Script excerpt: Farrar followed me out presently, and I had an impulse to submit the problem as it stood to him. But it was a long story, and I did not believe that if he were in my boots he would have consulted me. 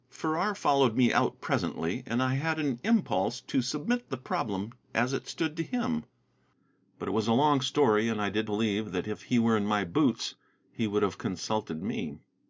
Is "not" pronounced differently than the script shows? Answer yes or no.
yes